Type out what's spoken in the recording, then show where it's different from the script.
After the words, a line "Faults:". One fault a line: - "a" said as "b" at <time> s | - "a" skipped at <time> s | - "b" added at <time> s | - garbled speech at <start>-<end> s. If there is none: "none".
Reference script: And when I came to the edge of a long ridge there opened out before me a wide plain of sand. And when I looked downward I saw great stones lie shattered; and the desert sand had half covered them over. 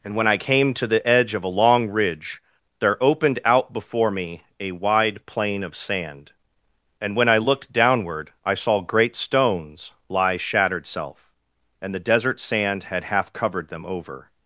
And when I came to the edge of a long ridge there opened out before me a wide plain of sand. And when I looked downward I saw great stones lie shattered; self and the desert sand had half covered them over.
Faults:
- "self" added at 10.9 s